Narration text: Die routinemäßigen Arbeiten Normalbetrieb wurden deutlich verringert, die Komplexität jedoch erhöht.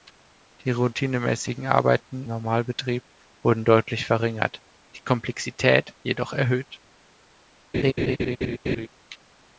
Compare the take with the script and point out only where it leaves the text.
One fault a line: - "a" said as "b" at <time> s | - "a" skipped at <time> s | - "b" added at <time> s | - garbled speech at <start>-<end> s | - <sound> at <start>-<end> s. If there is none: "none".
- laugh at 7.7-8.9 s